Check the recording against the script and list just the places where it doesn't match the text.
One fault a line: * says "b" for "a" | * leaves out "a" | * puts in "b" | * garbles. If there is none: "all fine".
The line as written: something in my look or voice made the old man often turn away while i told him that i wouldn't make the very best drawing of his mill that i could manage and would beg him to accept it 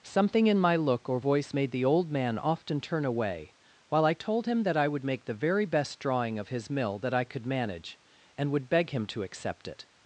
* says "would" for "wouldn't"